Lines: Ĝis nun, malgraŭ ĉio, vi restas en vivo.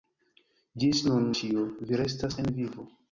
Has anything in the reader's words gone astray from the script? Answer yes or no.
yes